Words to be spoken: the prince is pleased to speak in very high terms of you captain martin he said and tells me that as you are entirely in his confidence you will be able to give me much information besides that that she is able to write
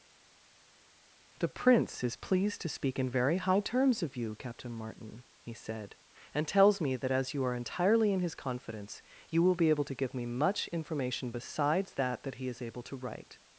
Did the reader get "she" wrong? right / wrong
wrong